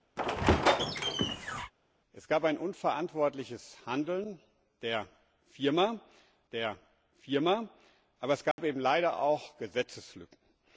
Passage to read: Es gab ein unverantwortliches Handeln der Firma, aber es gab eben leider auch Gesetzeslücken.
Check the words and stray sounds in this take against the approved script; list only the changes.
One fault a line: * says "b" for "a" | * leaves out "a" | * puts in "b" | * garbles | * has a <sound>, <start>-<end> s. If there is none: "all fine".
* has a squeak, 0.2-1.7 s
* puts in "der Firma"
* has a dropout, 8.5-8.6 s